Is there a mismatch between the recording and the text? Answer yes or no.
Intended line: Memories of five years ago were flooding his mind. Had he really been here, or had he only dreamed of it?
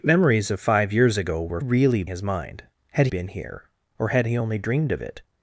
yes